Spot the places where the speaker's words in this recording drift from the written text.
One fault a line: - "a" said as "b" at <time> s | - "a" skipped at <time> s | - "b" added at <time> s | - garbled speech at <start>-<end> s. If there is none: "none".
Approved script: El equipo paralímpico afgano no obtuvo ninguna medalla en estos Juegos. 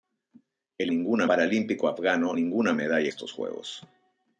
- "equipo" said as "ninguna" at 0.9 s
- "no obtuvo" skipped at 2.3 s
- "en" skipped at 3.1 s